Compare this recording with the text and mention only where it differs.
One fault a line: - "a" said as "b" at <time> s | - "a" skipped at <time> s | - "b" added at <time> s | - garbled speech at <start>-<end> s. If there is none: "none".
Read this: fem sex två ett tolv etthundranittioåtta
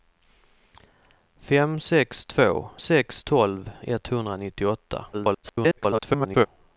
- "ett" said as "sex" at 2.8 s
- garbled speech at 5.1-6.5 s